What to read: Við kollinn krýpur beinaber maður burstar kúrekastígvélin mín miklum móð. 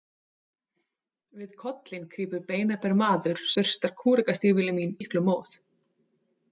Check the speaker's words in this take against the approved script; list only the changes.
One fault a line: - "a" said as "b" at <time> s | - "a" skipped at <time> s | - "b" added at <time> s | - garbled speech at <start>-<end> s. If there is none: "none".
none